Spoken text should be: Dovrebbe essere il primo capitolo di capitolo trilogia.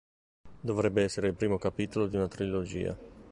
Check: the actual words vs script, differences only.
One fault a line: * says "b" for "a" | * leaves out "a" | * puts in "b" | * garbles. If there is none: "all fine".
* says "una" for "capitolo"